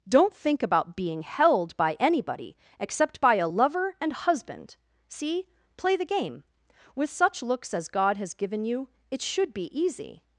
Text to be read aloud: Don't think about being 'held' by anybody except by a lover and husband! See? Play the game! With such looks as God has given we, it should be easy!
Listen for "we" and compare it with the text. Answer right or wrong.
wrong